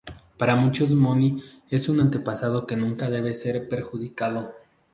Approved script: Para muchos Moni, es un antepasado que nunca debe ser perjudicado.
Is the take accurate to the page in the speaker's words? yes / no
yes